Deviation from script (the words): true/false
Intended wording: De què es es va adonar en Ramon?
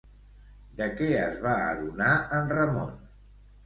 true